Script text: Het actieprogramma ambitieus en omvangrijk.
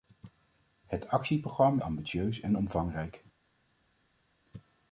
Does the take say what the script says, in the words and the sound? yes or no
yes